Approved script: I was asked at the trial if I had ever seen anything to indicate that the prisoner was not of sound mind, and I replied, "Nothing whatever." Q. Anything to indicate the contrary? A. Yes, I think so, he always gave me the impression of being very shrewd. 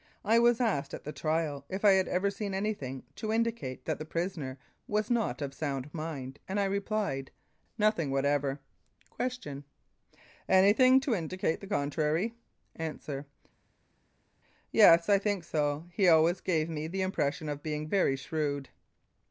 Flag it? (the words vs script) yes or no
no